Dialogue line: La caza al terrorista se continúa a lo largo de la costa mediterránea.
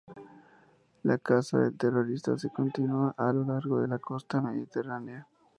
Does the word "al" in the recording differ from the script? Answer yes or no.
yes